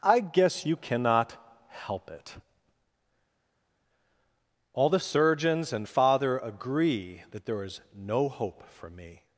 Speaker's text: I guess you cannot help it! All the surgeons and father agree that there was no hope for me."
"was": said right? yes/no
no